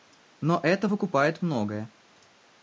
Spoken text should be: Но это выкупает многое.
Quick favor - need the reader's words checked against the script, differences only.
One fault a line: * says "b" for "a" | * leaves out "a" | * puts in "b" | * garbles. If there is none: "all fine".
all fine